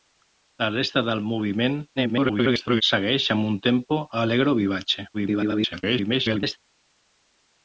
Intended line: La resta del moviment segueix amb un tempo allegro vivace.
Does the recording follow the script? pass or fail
fail